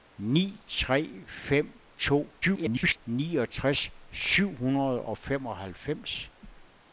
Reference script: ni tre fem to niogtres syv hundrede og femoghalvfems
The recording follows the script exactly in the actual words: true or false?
false